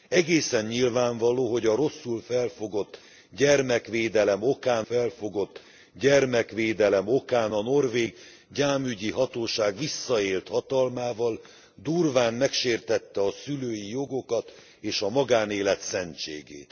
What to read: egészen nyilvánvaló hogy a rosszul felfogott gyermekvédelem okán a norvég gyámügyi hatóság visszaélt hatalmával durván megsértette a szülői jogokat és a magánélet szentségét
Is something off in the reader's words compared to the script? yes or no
yes